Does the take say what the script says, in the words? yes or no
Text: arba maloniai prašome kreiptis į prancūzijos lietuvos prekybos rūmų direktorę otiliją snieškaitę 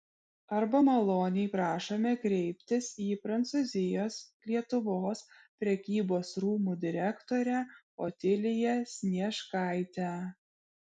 yes